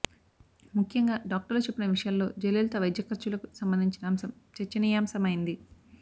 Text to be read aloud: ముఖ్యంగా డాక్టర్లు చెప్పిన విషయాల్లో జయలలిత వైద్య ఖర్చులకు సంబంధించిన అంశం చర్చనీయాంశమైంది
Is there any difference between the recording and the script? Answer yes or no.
no